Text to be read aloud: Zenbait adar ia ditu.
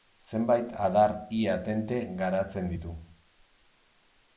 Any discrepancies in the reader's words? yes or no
yes